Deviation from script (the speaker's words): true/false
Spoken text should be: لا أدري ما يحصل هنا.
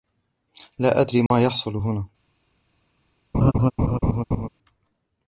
false